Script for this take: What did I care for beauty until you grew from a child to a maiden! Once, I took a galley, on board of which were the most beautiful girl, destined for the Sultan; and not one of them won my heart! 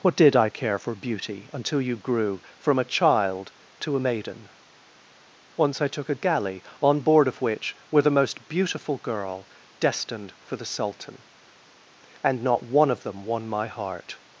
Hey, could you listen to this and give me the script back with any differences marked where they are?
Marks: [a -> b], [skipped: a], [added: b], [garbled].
What did I care for beauty until you grew from a child to a maiden! Once, I took a galley, on board of which were the most beautiful girl, destined for the Sultan; and not one of them won my heart!